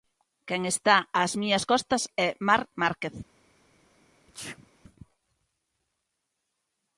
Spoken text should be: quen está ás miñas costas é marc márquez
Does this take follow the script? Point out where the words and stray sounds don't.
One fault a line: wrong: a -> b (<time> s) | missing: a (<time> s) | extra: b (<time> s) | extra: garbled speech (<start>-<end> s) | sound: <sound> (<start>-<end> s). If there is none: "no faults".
sound: sneeze (4.3-4.7 s)